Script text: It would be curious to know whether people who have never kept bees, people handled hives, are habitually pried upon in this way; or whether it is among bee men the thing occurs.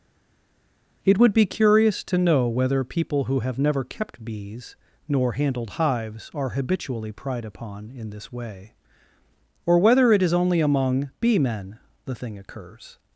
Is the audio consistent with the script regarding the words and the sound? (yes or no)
no